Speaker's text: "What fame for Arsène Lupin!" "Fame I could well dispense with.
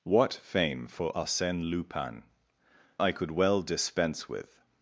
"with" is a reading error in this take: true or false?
false